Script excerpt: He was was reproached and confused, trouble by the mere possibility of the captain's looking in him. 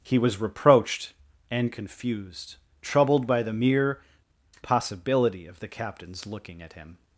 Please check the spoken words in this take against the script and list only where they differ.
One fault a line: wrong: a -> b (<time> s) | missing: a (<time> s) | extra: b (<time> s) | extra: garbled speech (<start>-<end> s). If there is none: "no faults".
missing: was (0.4 s)
wrong: trouble -> troubled (2.8 s)
wrong: in -> at (6.6 s)